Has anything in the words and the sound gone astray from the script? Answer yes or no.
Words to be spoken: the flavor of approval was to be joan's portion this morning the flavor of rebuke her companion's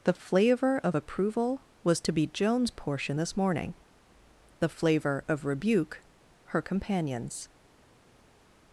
no